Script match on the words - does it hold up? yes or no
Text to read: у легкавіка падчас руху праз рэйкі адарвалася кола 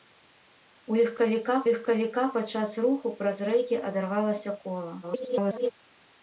no